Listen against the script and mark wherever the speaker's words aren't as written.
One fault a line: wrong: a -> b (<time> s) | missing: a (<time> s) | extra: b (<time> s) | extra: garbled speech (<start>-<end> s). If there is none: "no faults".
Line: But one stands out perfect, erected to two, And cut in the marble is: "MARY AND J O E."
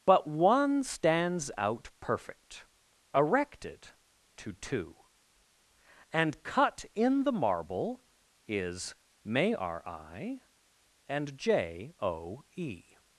wrong: MARY -> May r I (9.2 s)